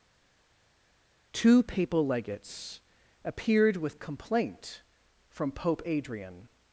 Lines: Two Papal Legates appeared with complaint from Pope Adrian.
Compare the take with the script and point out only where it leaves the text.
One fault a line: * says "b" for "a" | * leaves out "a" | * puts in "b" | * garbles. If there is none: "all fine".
all fine